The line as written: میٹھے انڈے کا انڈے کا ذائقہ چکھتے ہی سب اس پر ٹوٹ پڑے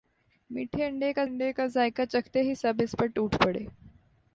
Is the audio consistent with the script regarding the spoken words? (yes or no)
yes